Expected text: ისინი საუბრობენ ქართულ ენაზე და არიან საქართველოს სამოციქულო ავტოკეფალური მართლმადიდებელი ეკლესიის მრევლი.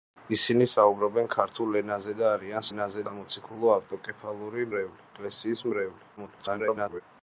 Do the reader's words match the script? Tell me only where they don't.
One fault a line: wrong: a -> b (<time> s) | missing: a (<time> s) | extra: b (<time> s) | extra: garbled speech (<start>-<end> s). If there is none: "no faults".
wrong: საქართველოს -> ენაზე (2.7 s)
wrong: მართლმადიდებელი -> მრევლი (4.7 s)
extra: garbled speech (6.2-7.0 s)